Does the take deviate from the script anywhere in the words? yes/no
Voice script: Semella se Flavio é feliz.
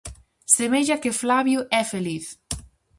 yes